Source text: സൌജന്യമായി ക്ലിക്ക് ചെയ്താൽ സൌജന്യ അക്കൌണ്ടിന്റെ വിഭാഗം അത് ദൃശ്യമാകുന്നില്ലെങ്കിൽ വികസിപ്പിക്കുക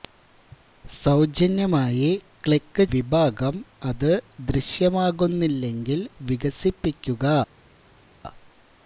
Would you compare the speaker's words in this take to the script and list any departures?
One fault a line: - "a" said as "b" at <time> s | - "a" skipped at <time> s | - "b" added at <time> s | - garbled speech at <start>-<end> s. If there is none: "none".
- "ചെയ്താൽ സൌജന്യ അക്കൌണ്ടിന്റെ" skipped at 2.8 s